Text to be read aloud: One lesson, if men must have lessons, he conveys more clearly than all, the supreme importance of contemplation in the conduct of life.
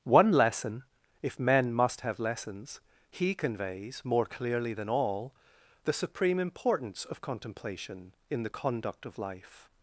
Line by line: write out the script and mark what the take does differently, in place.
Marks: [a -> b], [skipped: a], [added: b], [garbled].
One lesson, if men must have lessons, he conveys more clearly than all, the supreme importance of contemplation in the conduct of life.